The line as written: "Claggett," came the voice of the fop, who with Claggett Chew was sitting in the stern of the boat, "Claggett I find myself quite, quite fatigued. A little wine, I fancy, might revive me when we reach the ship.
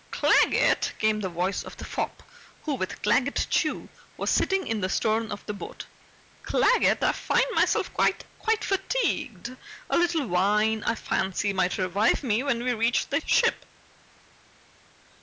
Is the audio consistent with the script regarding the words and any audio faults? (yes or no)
yes